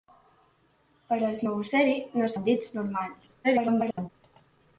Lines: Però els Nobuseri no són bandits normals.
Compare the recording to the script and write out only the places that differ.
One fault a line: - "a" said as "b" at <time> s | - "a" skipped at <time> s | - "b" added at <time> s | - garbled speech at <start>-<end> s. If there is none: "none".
- "són" skipped at 2.3 s
- garbled speech at 3.4-4.1 s